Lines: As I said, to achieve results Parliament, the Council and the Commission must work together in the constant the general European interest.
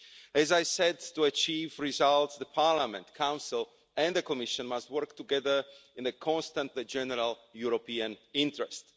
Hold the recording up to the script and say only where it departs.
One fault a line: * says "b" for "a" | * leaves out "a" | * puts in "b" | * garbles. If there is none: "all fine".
all fine